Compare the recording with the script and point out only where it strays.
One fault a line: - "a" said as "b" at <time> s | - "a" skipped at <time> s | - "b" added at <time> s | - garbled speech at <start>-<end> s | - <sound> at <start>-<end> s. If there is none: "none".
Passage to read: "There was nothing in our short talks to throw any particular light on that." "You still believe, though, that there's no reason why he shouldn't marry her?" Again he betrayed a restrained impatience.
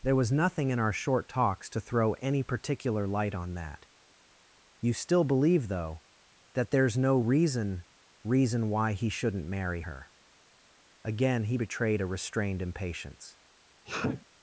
- "reason" added at 8.2 s
- sneeze at 13.9-14.3 s